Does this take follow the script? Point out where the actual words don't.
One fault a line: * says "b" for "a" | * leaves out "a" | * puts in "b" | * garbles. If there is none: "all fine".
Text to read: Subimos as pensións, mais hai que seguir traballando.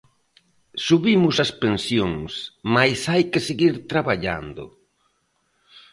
all fine